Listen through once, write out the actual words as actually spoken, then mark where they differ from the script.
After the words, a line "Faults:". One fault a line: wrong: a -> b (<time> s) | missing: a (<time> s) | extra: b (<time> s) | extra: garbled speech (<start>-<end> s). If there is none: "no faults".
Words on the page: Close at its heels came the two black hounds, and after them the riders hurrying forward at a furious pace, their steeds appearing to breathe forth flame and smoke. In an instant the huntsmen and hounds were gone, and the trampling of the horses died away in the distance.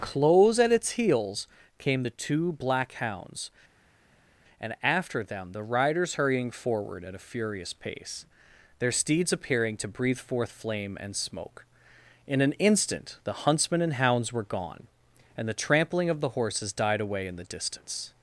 Close at its heels came the two black hounds, and after them the riders hurrying forward at a furious pace, their steeds appearing to breathe forth flame and smoke. In an instant the huntsmen and hounds were gone, and the trampling of the horses died away in the distance.
Faults:
no faults